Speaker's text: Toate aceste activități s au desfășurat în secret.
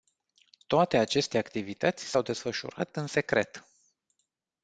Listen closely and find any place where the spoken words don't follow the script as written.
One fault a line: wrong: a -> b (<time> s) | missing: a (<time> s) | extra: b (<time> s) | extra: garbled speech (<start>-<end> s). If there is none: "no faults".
no faults